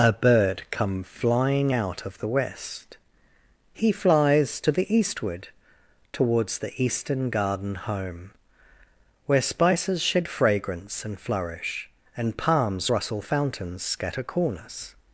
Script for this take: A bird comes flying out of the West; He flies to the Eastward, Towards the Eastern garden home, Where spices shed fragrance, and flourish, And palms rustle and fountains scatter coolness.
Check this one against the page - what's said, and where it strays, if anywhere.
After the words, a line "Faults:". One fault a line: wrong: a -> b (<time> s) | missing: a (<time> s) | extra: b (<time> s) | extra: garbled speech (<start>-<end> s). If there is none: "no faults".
A bird come flying out of the West; He flies to the Eastward, Towards the Eastern garden home, Where spices shed fragrance, and flourish, And palms rustle fountains scatter coolness.
Faults:
wrong: comes -> come (0.7 s)
missing: and (13.2 s)